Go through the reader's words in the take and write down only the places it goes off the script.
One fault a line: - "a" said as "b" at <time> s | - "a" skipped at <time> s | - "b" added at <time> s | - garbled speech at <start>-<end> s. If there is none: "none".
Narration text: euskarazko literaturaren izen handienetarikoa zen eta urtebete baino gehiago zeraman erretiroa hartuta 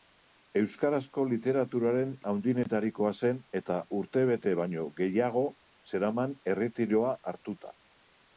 - "izen" skipped at 2.1 s